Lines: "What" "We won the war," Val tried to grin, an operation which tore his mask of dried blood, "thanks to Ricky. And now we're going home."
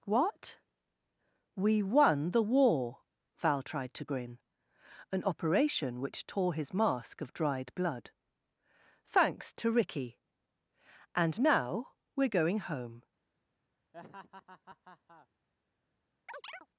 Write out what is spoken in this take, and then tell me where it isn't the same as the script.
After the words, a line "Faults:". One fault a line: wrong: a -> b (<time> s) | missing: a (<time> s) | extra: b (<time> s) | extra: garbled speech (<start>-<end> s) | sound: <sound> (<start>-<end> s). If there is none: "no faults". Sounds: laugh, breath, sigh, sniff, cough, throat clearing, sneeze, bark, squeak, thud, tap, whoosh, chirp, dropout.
"What" "We won the war," Val tried to grin, an operation which tore his mask of dried blood, "thanks to Ricky. And now we're going home."
Faults:
sound: laugh (13.9-15.3 s)
sound: chirp (16.3-16.7 s)